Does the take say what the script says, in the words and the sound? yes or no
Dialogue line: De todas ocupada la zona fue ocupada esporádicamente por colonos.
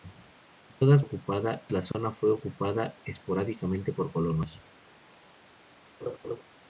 no